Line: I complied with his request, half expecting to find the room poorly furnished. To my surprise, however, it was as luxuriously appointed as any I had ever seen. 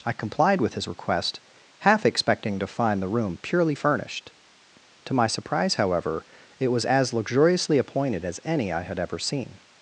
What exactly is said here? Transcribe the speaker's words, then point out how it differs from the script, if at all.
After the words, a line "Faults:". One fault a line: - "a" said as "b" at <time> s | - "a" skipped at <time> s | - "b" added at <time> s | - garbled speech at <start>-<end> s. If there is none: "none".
I complied with his request, half expecting to find the room purely furnished. To my surprise, however, it was as luxuriously appointed as any I had ever seen.
Faults:
- "poorly" said as "purely" at 3.4 s